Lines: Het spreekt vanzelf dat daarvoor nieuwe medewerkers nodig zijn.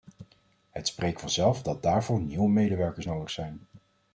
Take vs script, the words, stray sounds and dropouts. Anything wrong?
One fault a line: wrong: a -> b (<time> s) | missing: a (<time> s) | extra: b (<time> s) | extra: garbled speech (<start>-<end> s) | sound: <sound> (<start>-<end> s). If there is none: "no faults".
no faults